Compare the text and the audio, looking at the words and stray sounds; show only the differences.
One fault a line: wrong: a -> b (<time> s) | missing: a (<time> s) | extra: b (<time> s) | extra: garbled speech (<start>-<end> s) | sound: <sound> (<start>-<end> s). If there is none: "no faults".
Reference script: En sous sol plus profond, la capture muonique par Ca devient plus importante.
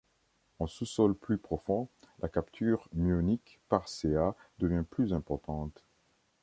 no faults